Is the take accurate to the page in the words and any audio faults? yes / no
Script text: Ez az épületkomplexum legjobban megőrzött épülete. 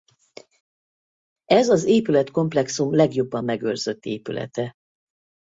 yes